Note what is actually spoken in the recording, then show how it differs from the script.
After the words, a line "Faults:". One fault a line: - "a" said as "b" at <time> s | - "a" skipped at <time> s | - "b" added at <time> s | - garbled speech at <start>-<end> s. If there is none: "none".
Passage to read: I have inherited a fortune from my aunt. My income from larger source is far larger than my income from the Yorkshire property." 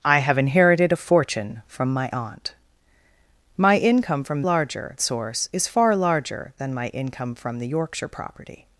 I have inherited a fortune from my aunt. My income from larger source is far larger than my income from the Yorkshire property."
Faults:
none